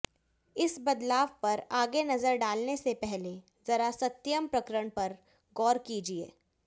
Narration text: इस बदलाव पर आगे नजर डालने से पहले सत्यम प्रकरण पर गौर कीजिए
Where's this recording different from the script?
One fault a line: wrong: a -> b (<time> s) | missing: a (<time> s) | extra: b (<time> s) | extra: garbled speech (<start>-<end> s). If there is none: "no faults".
extra: जरा (3.7 s)